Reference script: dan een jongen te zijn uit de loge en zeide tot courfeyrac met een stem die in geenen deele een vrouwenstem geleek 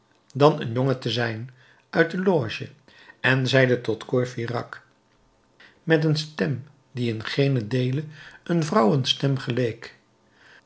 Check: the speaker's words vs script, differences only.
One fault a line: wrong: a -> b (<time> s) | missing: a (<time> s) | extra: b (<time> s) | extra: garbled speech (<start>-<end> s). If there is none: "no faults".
no faults